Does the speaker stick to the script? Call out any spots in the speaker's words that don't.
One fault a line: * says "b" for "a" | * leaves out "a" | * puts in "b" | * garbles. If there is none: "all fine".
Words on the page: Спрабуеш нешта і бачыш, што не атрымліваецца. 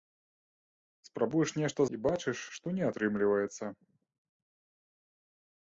all fine